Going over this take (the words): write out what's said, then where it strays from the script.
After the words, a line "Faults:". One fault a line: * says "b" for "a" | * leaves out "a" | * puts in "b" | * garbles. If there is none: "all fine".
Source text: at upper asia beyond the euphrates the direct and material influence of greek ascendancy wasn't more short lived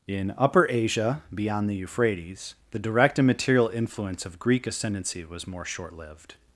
in upper asia beyond the euphrates the direct and material influence of greek ascendancy was more short lived
Faults:
* says "in" for "at"
* says "was" for "wasn't"